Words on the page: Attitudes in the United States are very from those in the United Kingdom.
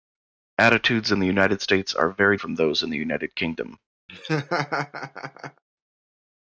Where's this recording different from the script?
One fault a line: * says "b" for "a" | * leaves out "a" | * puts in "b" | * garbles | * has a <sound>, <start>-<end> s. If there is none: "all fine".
* has a laugh, 4.1-5.6 s